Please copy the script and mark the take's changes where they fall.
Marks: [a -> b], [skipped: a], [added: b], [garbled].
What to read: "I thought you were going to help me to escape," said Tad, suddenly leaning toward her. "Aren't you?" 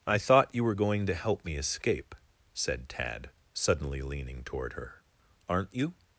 "I thought you were going to help me [skipped: to] escape," said Tad, suddenly leaning toward her. "Aren't you?"